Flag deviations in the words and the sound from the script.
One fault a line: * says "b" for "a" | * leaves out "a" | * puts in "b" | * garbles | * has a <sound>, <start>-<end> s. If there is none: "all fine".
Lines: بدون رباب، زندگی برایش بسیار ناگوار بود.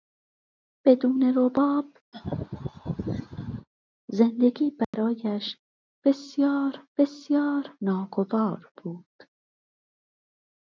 * has a laugh, 2.1-3.7 s
* has a dropout, 4.8-4.9 s
* puts in "بسیار"